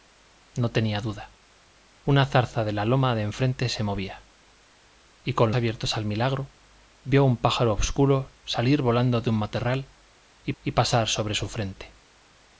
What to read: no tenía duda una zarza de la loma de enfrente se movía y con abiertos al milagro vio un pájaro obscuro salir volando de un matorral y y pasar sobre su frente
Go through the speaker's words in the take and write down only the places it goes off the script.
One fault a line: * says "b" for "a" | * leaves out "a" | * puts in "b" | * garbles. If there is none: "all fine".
all fine